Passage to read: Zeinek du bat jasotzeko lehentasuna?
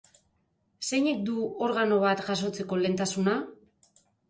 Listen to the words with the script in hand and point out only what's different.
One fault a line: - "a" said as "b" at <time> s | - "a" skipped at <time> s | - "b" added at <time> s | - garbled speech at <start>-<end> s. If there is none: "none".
- "organo" added at 1.7 s